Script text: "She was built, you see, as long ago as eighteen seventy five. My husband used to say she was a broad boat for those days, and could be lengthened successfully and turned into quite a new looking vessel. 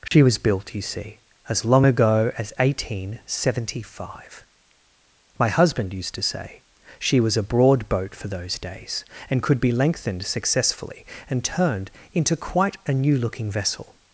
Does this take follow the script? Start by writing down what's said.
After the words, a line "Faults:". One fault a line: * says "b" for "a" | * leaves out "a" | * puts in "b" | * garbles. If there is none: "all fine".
"She was built, you see, as long ago as eighteen seventy five. My husband used to say she was a broad boat for those days, and could be lengthened successfully and turned into quite a new looking vessel.
Faults:
all fine